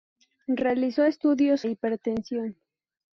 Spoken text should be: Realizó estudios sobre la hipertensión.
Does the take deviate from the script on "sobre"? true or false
true